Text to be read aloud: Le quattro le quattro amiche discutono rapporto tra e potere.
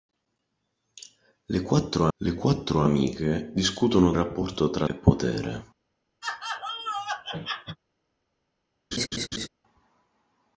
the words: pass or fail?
pass